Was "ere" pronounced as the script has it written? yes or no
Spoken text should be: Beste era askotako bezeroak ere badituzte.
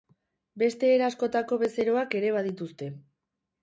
yes